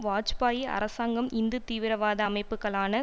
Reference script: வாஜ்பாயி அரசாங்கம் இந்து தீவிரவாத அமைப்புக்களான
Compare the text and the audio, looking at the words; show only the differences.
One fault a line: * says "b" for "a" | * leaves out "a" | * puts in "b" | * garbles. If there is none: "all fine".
all fine